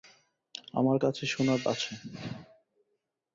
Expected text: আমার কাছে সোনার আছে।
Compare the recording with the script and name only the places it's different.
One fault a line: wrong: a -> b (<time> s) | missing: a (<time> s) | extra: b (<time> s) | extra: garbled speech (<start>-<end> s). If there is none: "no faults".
no faults